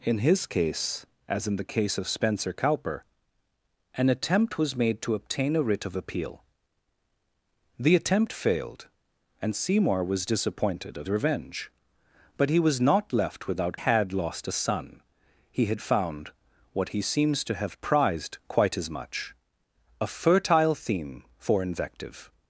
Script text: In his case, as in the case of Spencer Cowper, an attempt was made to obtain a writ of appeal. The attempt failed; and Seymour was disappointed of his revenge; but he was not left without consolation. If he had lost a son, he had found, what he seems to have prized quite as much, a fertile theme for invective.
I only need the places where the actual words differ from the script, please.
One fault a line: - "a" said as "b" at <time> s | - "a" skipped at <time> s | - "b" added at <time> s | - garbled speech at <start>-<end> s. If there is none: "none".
- "his" skipped at 11.1 s
- "consolation If he" skipped at 13.8 s